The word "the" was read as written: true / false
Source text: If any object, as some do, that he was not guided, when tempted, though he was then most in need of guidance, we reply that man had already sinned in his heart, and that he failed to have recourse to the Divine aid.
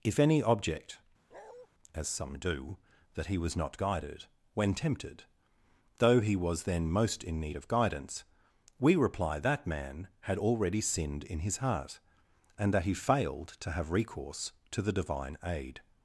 true